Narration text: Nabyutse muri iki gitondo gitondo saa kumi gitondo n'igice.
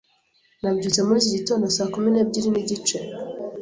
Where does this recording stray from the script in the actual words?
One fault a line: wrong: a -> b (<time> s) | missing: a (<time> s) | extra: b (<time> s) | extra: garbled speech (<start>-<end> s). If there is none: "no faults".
missing: gitondo (1.6 s)
wrong: gitondo -> n'ebyiri (2.1 s)